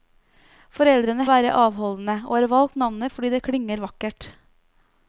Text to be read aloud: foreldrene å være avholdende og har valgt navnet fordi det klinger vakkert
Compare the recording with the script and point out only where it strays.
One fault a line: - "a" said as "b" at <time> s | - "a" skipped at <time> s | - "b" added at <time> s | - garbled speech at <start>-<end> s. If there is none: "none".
none